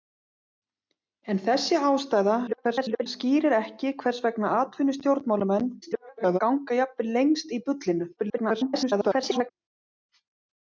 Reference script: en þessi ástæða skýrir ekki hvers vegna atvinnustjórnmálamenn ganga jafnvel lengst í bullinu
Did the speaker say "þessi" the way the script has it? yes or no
yes